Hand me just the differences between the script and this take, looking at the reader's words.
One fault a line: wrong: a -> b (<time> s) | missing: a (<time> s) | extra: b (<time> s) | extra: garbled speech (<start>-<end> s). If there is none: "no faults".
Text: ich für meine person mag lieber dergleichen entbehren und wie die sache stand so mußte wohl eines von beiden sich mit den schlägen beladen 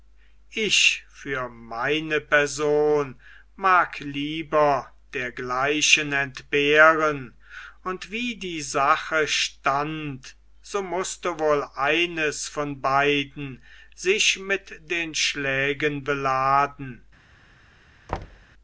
no faults